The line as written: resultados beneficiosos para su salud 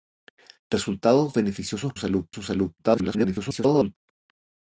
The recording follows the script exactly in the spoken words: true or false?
false